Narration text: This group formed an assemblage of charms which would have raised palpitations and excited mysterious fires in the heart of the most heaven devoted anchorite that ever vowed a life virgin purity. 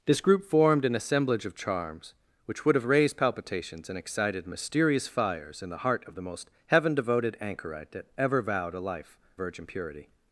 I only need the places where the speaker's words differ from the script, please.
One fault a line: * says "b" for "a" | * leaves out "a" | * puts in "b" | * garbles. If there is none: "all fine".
all fine